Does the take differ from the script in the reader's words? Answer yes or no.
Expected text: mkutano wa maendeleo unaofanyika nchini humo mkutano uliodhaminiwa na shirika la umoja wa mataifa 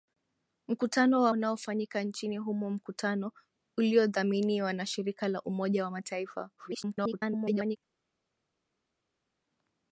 yes